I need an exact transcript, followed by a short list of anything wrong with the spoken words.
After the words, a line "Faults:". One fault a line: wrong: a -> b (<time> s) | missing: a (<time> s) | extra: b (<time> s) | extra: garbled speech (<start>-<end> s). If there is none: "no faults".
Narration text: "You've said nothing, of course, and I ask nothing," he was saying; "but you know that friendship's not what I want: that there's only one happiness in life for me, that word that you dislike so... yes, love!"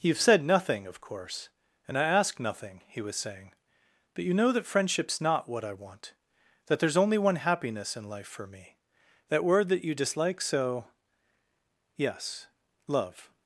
"You've said nothing, of course, and I ask nothing," he was saying; "but you know that friendship's not what I want: that there's only one happiness in life for me, that word that you dislike so... yes, love!"
Faults:
no faults